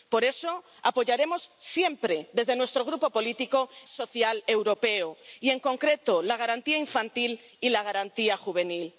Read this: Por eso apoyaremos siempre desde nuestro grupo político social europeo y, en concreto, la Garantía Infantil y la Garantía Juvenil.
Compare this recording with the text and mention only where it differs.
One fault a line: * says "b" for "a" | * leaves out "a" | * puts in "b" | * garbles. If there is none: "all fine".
all fine